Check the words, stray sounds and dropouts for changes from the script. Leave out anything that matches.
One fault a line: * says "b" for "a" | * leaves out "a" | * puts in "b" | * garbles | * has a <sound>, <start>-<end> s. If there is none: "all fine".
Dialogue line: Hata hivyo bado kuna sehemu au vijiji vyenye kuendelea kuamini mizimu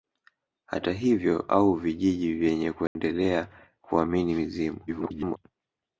* leaves out "bado kuna sehemu"
* has a dropout, 2.9-3.0 s
* garbles